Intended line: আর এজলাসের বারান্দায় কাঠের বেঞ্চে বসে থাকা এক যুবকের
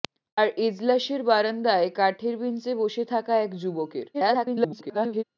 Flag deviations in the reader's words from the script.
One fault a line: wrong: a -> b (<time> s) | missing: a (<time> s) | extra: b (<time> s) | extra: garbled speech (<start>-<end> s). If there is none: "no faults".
extra: garbled speech (4.1-5.2 s)